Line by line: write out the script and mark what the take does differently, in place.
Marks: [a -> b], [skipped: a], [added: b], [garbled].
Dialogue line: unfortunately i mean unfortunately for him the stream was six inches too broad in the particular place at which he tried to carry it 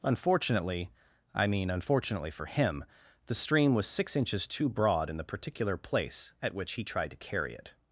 unfortunately i mean unfortunately for him the stream was six inches too broad in the particular place at which he tried to carry it